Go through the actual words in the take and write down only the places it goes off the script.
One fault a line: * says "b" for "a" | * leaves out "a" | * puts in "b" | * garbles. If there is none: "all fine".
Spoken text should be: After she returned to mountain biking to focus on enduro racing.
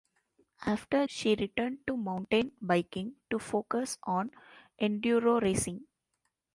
all fine